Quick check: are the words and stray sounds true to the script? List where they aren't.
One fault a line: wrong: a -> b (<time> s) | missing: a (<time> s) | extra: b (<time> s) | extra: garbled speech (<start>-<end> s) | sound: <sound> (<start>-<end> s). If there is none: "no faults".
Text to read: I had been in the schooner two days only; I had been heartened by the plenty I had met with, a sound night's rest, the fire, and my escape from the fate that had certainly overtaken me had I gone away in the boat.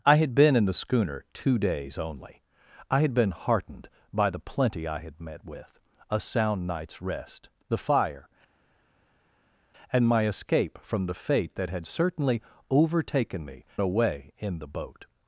missing: had I gone (13.6 s)